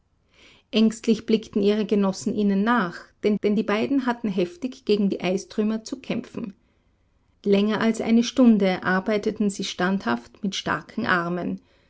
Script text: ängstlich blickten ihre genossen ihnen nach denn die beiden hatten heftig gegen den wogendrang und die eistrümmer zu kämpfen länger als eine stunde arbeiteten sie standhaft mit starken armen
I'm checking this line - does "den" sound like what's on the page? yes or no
no